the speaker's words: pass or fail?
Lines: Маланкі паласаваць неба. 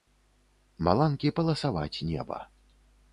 pass